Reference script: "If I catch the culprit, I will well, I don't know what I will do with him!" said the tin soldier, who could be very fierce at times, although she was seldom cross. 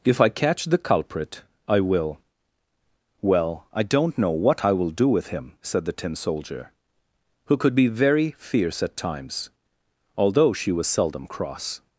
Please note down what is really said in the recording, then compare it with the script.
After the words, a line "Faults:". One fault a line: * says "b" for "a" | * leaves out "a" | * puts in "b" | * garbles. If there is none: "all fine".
"If I catch the culprit, I will well, I don't know what I will do with him!" said the tin soldier, who could be very fierce at times, although she was seldom cross.
Faults:
all fine